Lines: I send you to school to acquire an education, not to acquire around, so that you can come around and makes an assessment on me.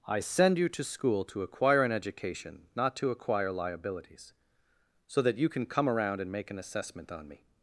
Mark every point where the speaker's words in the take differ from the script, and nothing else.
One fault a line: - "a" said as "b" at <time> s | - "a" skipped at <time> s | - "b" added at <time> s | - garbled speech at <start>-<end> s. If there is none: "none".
- "around" said as "liabilities" at 3.5 s
- "makes" said as "make" at 6.3 s